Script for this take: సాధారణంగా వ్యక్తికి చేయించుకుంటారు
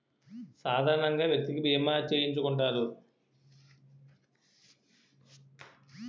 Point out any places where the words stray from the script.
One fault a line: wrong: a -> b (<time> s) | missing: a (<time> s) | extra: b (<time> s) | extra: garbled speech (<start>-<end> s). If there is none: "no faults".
extra: బీమా (1.6 s)